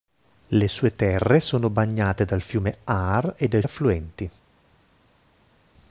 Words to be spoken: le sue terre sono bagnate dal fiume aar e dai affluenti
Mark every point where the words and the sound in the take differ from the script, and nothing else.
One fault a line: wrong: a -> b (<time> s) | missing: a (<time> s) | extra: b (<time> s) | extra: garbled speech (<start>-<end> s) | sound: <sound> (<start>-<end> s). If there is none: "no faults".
no faults